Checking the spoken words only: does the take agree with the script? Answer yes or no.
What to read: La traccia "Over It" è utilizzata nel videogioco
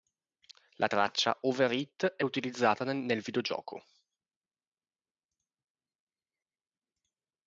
yes